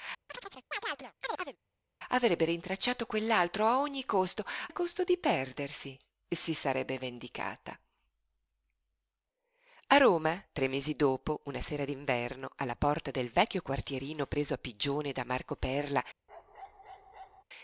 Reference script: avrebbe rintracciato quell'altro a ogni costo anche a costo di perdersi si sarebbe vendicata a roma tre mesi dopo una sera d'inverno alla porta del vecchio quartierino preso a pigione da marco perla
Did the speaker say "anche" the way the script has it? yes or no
no